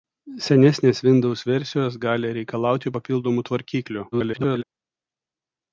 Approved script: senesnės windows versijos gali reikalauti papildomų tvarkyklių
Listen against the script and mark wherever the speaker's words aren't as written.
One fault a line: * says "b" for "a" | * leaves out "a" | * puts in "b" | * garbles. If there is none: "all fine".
* garbles